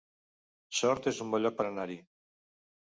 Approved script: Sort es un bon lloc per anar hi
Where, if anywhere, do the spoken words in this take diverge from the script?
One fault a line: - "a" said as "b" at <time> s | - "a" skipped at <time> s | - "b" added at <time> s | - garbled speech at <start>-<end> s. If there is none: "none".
none